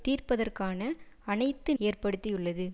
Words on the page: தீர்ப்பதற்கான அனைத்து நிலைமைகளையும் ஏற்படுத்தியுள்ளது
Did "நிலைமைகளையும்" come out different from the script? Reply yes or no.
yes